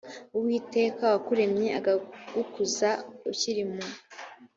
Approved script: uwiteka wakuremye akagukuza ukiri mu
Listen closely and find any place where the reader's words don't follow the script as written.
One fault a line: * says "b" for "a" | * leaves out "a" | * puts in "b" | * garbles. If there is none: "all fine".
all fine